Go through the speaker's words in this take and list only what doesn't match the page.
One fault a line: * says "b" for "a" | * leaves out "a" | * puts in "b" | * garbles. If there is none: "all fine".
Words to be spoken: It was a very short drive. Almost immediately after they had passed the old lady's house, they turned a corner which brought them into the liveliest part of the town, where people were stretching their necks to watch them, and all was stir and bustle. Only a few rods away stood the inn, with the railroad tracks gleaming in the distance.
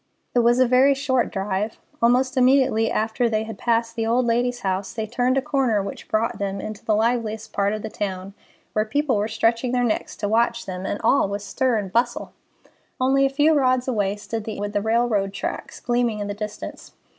* leaves out "inn"